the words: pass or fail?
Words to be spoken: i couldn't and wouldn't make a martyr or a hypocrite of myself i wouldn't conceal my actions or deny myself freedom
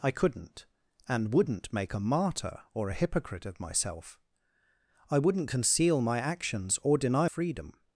fail